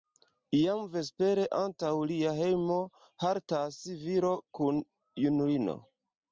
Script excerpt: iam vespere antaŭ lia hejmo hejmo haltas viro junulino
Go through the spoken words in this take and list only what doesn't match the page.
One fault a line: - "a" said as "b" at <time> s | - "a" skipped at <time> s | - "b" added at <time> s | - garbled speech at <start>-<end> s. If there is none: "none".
- "hejmo" skipped at 2.8 s
- "kun" added at 4.6 s